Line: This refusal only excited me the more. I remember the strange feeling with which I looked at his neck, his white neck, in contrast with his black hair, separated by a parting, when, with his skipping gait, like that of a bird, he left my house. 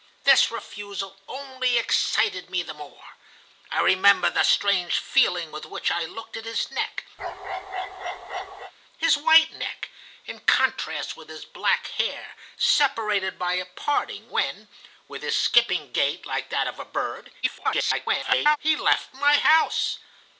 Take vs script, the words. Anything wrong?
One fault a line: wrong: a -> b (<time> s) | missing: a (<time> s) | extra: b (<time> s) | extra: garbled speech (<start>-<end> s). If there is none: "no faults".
extra: garbled speech (17.4-18.6 s)